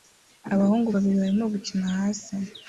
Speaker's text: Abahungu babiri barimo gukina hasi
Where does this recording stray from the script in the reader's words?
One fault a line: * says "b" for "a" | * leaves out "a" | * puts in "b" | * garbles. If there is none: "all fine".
all fine